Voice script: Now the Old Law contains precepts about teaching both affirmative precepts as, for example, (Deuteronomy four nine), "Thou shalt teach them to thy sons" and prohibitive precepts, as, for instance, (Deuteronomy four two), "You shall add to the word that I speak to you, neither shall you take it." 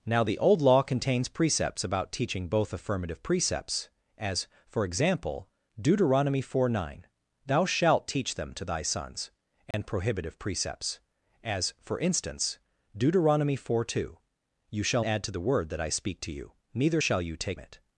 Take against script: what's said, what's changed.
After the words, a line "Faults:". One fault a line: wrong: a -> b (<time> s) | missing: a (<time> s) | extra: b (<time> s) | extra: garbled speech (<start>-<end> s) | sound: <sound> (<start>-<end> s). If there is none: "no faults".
Now the Old Law contains precepts about teaching both affirmative precepts as, for example, (Deuteronomy four nine), "Thou shalt teach them to thy sons" and prohibitive precepts, as, for instance, (Deuteronomy four two), "You shall add to the word that I speak to you, neither shall you take it."
Faults:
sound: dropout (9.7-9.7 s)